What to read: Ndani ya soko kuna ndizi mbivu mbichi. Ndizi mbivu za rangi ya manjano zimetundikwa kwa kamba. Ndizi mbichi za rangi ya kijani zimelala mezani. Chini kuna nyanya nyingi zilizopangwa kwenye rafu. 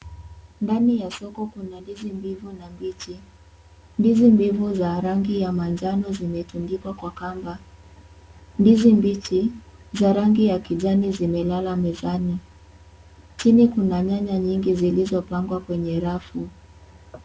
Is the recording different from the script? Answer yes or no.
yes